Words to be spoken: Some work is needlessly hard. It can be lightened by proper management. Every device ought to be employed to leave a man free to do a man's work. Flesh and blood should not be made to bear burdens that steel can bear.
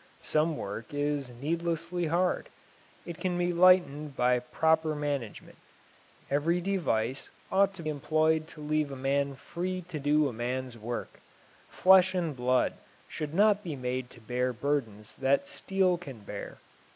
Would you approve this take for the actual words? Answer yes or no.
no